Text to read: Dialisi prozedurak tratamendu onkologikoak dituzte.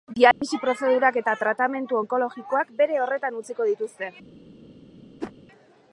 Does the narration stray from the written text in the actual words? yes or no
yes